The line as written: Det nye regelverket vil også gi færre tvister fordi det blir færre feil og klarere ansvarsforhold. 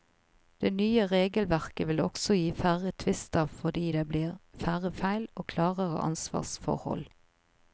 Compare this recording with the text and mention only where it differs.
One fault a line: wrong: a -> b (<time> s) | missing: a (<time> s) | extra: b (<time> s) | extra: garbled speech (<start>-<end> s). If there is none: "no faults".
no faults